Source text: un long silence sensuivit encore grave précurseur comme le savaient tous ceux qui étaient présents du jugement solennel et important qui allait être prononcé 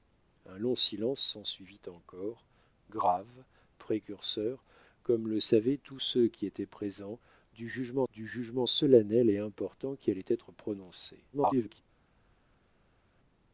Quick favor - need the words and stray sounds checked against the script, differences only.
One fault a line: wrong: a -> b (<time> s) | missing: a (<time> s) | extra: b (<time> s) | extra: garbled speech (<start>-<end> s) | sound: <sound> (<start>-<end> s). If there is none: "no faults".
extra: du jugement (8.1 s)
extra: garbled speech (11.3-11.8 s)